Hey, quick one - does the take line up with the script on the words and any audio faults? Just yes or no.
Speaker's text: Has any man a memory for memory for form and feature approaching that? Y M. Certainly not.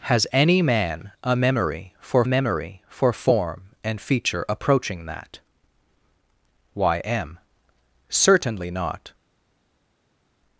yes